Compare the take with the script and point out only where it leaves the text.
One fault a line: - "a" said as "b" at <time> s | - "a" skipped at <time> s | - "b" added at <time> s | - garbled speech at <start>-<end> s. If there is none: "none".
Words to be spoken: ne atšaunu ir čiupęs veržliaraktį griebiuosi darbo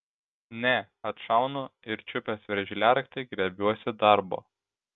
none